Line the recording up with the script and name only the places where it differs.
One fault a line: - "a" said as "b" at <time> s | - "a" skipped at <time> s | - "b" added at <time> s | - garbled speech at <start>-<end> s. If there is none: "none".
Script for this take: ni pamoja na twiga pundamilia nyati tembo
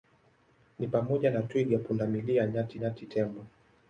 - "nyati" added at 2.7 s